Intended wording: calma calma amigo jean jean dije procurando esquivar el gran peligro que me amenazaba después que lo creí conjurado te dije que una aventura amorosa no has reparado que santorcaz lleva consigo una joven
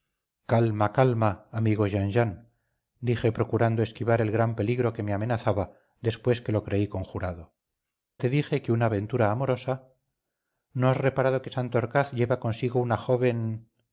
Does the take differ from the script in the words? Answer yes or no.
no